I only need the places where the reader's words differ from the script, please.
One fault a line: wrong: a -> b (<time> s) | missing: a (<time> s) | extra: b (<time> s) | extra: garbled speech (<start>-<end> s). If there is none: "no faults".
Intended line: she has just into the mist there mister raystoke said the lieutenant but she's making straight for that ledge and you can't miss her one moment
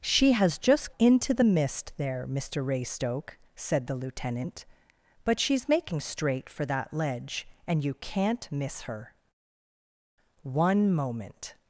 no faults